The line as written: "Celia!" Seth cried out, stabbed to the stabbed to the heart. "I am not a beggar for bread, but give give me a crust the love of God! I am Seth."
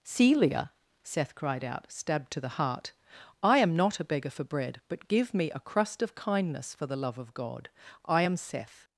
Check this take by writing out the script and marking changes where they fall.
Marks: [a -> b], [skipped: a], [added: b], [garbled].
"Celia!" Seth cried out, stabbed to the [skipped: stabbed to the] heart. "I am not a beggar for bread, but give [skipped: give] me a crust [added: of kindness for] the love of God! I am Seth."